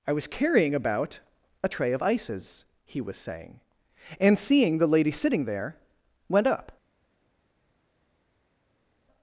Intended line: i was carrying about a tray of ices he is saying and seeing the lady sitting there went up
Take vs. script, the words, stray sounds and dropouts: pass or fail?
fail